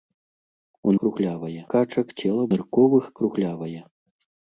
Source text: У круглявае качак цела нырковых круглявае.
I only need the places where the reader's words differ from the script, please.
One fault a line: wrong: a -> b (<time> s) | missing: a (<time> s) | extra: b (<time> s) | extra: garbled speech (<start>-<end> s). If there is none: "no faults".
no faults